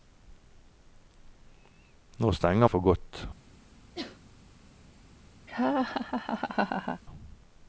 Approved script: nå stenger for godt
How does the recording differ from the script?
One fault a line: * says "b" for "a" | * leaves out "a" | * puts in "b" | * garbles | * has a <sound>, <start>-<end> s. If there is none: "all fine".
* has a sneeze, 4.0-4.2 s
* has a laugh, 5.5-7.0 s